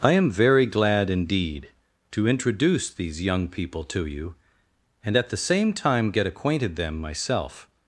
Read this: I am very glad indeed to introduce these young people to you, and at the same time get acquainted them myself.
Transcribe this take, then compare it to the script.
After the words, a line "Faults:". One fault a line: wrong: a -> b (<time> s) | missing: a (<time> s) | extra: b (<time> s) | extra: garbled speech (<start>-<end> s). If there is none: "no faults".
I am very glad indeed to introduce these young people to you, and at the same time get acquainted them myself.
Faults:
no faults